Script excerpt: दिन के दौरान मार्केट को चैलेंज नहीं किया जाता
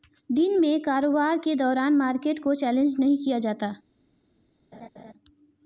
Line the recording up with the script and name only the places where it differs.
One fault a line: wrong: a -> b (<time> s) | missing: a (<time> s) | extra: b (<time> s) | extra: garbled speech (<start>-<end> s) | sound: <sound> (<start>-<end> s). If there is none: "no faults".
extra: में कारोबार (0.6 s)
sound: laugh (4.7-5.1 s)